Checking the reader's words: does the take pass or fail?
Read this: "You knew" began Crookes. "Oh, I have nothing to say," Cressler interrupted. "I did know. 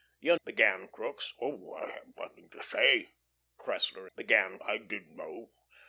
fail